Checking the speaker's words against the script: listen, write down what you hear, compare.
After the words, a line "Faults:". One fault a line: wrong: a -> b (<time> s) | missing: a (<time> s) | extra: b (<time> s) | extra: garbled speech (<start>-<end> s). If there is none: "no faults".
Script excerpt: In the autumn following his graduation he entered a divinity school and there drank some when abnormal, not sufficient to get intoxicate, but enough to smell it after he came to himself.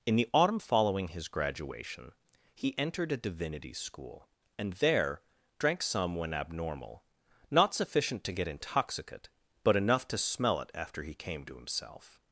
In the autumn following his graduation he entered a divinity school and there drank some when abnormal, not sufficient to get intoxicate, but enough to smell it after he came to himself.
Faults:
no faults